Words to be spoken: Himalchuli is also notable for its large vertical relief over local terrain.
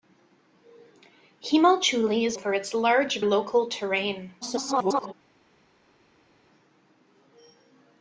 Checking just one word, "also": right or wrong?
wrong